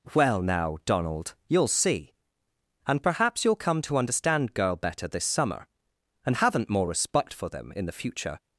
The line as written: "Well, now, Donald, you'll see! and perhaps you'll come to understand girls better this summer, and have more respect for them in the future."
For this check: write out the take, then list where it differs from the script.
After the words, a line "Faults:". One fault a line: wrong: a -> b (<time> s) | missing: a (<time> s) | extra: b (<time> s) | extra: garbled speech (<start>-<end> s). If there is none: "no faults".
"Well, now, Donald, you'll see! and perhaps you'll come to understand girl better this summer, and haven't more respect for them in the future."
Faults:
wrong: girls -> girl (4.5 s)
wrong: have -> haven't (6.4 s)